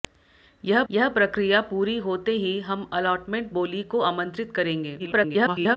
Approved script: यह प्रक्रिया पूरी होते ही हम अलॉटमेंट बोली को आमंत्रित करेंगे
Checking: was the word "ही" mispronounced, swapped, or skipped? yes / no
no